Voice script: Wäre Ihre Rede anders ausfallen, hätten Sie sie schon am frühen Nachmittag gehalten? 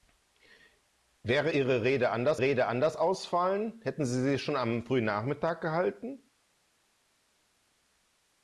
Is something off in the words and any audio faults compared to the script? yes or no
yes